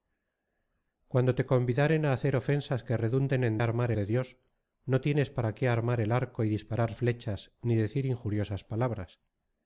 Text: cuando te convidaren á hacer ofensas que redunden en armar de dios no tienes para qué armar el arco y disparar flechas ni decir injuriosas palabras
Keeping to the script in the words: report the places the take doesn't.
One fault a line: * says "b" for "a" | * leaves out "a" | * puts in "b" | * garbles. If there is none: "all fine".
all fine